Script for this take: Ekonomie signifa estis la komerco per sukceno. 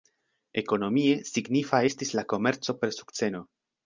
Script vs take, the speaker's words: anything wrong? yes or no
no